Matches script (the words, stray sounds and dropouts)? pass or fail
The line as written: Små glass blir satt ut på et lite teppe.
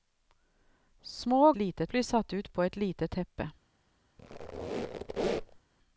fail